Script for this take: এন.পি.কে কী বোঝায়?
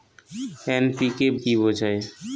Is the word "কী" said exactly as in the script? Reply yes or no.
yes